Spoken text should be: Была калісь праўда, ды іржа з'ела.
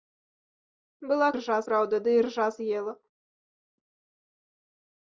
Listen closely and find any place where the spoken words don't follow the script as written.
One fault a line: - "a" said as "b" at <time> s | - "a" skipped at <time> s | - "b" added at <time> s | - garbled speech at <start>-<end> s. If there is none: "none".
- "калісь" said as "іржа" at 1.3 s